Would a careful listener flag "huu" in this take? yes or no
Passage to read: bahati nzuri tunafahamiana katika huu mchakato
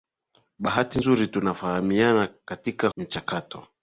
yes